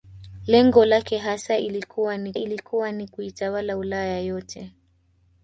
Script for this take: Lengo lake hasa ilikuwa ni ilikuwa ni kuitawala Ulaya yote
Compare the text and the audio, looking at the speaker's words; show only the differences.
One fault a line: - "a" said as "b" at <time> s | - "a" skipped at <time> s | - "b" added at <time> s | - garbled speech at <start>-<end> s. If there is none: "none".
none